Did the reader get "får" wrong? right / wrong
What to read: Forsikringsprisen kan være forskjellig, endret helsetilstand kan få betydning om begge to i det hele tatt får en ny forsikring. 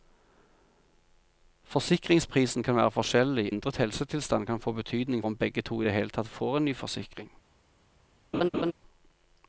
right